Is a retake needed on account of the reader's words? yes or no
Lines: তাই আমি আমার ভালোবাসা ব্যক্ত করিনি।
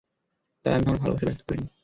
no